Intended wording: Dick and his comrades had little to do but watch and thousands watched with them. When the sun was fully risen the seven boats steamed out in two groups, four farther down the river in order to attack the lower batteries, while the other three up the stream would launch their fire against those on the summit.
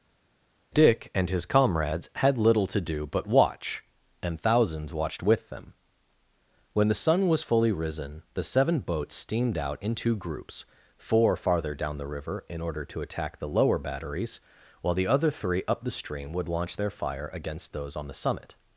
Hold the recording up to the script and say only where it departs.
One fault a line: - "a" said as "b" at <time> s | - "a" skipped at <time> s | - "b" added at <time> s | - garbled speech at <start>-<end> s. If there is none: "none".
none